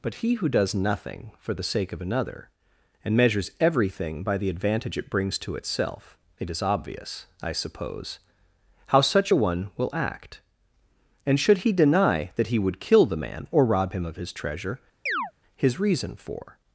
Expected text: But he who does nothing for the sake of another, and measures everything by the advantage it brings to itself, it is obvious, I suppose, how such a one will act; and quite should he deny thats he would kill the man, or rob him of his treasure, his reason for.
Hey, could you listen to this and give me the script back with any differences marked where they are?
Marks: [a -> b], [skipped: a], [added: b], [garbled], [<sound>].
But he who does nothing for the sake of another, and measures everything by the advantage it brings to itself, it is obvious, I suppose, how such a one will act; and [skipped: quite] should he deny [thats -> that] he would kill the man, or rob him of his treasure, [chirp] his reason for.